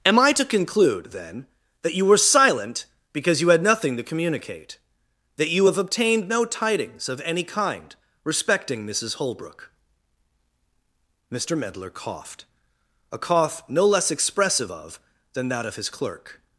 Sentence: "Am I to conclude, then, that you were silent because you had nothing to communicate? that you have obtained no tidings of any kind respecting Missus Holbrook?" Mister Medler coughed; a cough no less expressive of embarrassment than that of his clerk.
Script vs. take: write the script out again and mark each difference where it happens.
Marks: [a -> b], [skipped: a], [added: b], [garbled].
"Am I to conclude, then, that you were silent because you had nothing to communicate? that you have obtained no tidings of any kind respecting Missus Holbrook?" Mister Medler coughed; a cough no less expressive of [skipped: embarrassment] than that of his clerk.